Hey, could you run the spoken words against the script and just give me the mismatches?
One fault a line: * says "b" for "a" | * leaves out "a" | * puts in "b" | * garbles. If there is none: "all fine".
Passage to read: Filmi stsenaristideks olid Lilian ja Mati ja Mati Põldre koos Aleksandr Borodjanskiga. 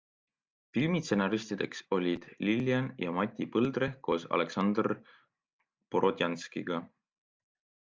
* leaves out "ja Mati"